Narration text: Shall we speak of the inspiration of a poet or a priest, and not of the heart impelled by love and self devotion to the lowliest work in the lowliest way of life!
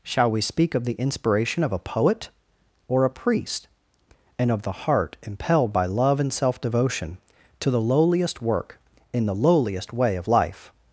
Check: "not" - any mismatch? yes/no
yes